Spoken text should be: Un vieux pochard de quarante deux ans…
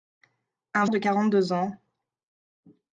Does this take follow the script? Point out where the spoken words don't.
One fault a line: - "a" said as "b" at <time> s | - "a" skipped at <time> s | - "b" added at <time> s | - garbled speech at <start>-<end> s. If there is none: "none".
- "vieux pochard" skipped at 0.8 s